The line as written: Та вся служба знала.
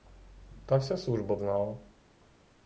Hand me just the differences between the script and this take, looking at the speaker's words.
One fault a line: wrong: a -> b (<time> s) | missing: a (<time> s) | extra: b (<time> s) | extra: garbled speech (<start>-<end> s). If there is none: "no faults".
no faults